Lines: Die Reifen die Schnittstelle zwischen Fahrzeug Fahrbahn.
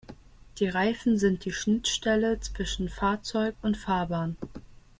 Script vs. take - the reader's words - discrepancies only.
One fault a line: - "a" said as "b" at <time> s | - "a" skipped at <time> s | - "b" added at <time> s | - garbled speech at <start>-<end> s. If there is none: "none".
- "sind" added at 1.2 s
- "und" added at 3.6 s